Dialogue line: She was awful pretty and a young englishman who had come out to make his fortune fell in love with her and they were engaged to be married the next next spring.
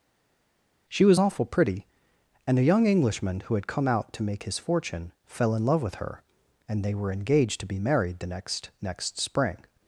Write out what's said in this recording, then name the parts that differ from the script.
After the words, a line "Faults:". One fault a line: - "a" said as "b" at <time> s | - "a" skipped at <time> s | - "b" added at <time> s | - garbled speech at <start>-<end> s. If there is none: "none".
She was awful pretty and a young englishman who had come out to make his fortune fell in love with her and they were engaged to be married the next next spring.
Faults:
none